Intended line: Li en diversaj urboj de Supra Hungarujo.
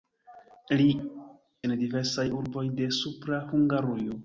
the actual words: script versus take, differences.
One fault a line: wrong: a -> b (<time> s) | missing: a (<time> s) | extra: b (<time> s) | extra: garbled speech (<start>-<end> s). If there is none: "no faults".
no faults